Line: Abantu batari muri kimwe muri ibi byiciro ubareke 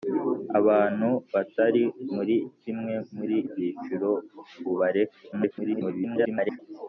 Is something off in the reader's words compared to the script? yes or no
yes